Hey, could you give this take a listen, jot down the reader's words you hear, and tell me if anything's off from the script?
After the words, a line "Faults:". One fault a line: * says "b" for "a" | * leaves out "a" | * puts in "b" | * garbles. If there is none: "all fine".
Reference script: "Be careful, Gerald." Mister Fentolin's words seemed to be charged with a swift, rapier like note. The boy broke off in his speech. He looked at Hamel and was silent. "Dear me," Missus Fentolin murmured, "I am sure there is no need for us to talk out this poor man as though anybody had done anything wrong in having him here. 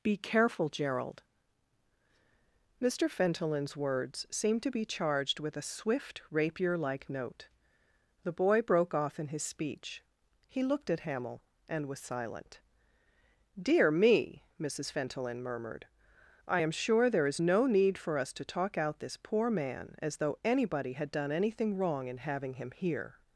"Be careful, Gerald." Mister Fentolin's words seemed to be charged with a swift, rapier like note. The boy broke off in his speech. He looked at Hamel and was silent. "Dear me," Missus Fentolin murmured, "I am sure there is no need for us to talk out this poor man as though anybody had done anything wrong in having him here.
Faults:
all fine